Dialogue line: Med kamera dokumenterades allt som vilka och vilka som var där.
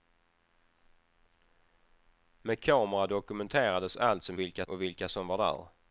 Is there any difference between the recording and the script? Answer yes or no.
no